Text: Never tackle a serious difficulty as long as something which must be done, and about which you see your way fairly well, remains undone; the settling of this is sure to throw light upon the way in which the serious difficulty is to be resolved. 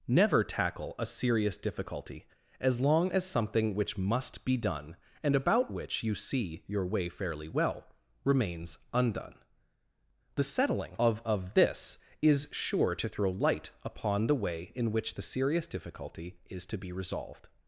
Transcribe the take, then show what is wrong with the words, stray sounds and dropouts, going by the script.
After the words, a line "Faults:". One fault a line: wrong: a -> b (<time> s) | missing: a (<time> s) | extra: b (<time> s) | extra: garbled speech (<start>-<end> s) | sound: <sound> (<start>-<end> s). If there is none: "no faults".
Never tackle a serious difficulty as long as something which must be done, and about which you see your way fairly well, remains undone; the settling of of this is sure to throw light upon the way in which the serious difficulty is to be resolved.
Faults:
extra: of (11.2 s)